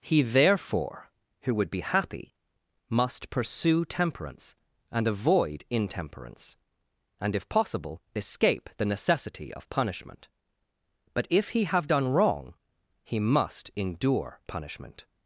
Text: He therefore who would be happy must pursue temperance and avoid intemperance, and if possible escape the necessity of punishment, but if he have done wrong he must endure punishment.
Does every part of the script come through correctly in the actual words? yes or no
yes